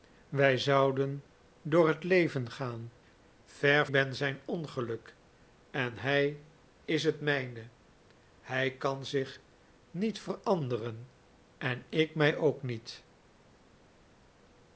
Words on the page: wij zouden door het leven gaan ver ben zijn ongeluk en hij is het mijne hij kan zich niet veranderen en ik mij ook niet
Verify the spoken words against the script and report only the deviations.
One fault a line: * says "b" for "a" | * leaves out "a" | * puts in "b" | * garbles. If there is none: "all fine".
all fine